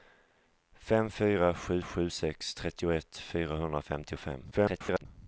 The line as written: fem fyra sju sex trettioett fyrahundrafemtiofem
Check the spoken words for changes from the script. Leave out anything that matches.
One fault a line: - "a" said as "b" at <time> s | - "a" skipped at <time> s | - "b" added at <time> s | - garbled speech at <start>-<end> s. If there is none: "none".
- "sju" added at 1.8 s
- garbled speech at 4.5-5.1 s